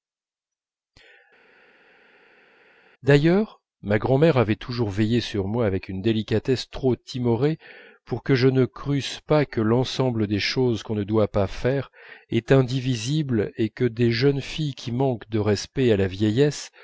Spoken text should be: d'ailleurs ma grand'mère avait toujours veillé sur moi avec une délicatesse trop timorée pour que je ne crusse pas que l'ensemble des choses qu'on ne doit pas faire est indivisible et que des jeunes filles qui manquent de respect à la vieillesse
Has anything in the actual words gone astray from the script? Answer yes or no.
no